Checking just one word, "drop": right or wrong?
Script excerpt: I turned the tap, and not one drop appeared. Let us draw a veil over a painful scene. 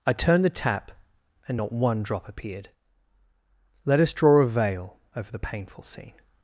right